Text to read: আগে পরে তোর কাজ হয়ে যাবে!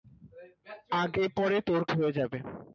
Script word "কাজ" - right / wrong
wrong